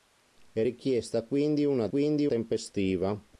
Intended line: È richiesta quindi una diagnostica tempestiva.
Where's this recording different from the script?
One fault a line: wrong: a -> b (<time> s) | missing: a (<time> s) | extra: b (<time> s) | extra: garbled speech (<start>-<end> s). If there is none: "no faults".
wrong: diagnostica -> quindi (1.9 s)